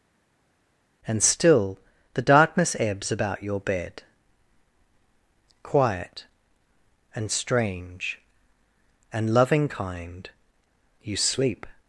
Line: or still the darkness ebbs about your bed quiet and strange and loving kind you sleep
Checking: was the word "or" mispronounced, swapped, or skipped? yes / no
yes